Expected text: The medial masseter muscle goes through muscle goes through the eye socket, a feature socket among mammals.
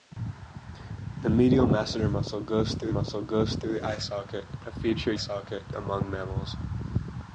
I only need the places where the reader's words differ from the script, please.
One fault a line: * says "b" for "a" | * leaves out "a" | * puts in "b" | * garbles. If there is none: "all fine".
all fine